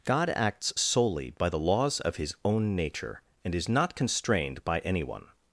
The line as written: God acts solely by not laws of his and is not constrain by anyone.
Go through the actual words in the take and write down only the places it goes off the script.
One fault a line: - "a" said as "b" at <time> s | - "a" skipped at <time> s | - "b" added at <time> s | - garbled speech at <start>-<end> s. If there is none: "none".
- "not" said as "the" at 1.5 s
- "own nature" added at 2.4 s
- "constrain" said as "constrained" at 3.9 s